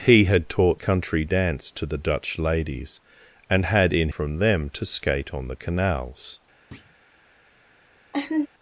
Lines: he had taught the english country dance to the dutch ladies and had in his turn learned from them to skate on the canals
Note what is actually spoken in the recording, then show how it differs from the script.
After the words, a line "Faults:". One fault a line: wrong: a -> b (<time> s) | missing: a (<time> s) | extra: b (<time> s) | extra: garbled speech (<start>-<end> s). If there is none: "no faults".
he had taught country dance to the dutch ladies and had in from them to skate on the canals
Faults:
missing: the english (0.8 s)
missing: his turn learned (4.1 s)